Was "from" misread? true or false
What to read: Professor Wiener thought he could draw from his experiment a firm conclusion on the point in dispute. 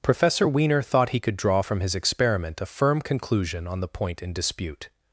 false